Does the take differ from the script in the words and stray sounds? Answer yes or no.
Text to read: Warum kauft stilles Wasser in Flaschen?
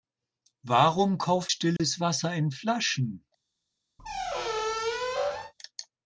yes